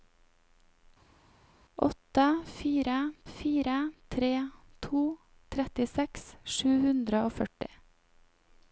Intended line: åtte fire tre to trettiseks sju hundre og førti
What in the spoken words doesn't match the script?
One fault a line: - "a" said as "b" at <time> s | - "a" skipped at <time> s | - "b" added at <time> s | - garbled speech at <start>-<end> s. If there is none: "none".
- "fire" added at 3.3 s